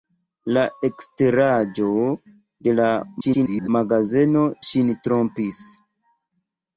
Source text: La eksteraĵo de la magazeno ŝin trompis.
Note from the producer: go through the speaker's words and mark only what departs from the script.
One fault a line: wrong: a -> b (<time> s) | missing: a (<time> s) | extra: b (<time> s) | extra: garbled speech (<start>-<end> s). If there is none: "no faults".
extra: garbled speech (3.2-3.7 s)